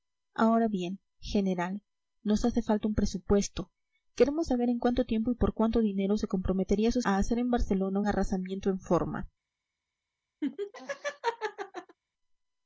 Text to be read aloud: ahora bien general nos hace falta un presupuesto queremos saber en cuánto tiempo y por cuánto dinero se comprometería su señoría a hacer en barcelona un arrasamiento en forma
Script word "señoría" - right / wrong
wrong